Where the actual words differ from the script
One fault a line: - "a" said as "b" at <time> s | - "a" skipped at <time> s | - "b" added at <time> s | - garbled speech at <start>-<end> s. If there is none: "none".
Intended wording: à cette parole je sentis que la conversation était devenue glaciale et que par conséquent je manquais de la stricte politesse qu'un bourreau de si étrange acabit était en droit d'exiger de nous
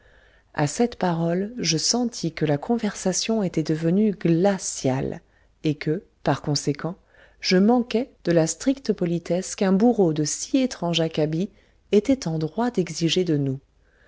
none